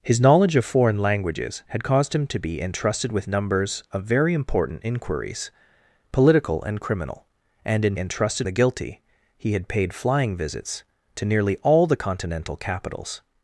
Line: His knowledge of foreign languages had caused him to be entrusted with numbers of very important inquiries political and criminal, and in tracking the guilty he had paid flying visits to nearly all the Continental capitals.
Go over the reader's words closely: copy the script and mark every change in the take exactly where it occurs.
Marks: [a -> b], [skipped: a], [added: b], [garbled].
His knowledge of foreign languages had caused him to be entrusted with numbers of very important inquiries political and criminal, and in [tracking -> entrusted] the guilty he had paid flying visits to nearly all the Continental capitals.